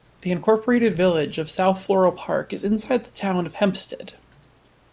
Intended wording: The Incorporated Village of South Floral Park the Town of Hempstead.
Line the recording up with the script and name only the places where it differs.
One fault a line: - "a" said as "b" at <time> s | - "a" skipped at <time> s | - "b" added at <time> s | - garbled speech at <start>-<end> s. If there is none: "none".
- "is inside" added at 2.5 s